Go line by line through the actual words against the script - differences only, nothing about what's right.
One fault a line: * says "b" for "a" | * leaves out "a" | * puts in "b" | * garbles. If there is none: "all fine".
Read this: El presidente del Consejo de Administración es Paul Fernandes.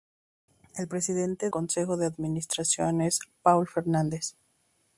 * leaves out "del"